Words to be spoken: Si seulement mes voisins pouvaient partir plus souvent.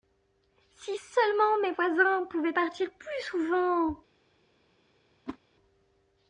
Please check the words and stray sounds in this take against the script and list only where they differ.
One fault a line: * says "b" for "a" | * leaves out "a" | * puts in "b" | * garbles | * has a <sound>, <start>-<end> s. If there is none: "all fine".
* has a whoosh, 5.3-5.4 s